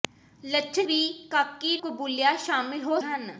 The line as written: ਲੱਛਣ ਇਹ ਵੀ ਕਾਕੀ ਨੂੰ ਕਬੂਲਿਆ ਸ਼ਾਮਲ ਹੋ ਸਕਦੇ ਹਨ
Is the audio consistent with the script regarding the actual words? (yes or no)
no